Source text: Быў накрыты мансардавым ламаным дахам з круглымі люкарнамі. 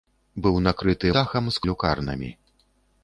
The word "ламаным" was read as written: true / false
false